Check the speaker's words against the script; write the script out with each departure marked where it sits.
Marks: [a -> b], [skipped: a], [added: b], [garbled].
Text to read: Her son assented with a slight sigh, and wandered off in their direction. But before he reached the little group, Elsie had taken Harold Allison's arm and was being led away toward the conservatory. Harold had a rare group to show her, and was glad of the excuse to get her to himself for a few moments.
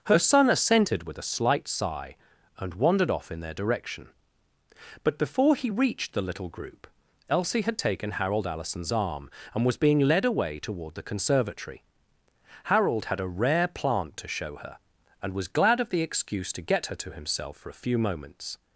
Her son assented with a slight sigh, and wandered off in their direction. But before he reached the little group, Elsie had taken Harold Allison's arm and was being led away toward the conservatory. Harold had a rare [group -> plant] to show her, and was glad of the excuse to get her to himself for a few moments.